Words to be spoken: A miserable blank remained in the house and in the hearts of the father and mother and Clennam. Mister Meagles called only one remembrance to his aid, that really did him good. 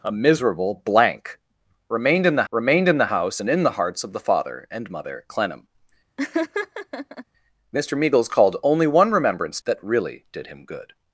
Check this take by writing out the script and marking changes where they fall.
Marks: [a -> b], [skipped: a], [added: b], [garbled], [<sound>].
A miserable blank remained in the [added: remained in the] house and in the hearts of the father and mother [skipped: and] Clennam. [laugh] Mister Meagles called only one remembrance [skipped: to his aid,] that really did him good.